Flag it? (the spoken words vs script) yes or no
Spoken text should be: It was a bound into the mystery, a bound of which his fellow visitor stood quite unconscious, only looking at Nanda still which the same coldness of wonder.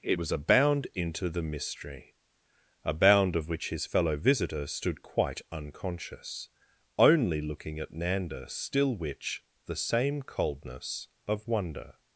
no